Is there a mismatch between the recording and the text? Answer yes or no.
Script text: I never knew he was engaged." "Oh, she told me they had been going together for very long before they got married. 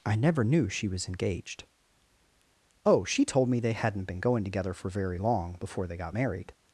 yes